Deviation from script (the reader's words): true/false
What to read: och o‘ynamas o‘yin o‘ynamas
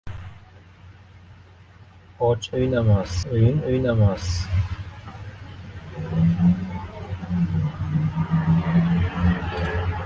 false